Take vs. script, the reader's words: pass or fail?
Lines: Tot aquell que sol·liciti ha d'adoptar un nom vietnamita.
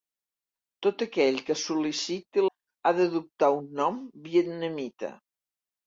pass